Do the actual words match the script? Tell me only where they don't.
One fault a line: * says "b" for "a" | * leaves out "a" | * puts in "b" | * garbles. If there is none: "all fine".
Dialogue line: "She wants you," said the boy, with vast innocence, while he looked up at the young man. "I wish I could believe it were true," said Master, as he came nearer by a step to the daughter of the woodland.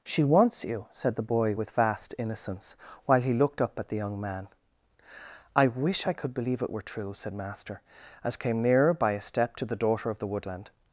* leaves out "he"